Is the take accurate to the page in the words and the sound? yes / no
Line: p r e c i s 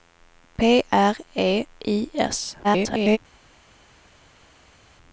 no